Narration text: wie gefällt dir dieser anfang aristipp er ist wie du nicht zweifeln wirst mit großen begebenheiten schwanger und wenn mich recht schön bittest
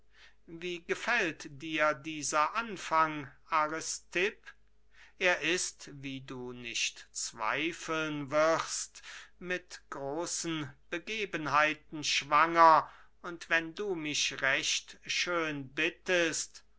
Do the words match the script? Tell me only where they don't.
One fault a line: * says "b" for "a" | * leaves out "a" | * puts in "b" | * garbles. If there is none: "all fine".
* puts in "du"